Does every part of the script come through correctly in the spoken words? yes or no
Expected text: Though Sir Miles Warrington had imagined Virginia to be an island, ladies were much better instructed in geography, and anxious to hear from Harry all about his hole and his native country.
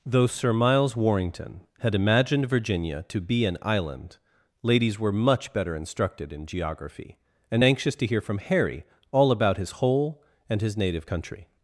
yes